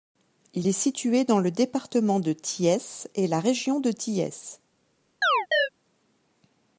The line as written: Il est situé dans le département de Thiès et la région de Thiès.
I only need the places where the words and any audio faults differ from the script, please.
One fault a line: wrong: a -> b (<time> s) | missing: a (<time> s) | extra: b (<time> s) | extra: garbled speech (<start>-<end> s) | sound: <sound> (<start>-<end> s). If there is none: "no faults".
sound: chirp (5.2-5.7 s)